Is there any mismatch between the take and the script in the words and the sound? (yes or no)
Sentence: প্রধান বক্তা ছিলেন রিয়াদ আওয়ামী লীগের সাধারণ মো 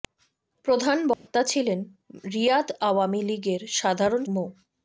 yes